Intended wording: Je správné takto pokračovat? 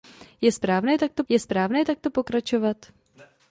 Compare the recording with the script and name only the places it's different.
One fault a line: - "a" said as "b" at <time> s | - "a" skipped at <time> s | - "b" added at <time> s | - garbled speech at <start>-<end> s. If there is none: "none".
- "je správné takto" added at 1.3 s